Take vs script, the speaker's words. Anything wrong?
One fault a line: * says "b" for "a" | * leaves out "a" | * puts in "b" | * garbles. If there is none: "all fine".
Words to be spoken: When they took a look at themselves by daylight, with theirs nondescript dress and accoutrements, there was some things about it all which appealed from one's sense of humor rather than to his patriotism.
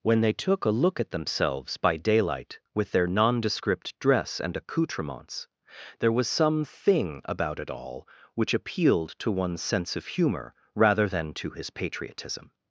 * says "their" for "theirs"
* says "thing" for "things"
* says "to" for "from"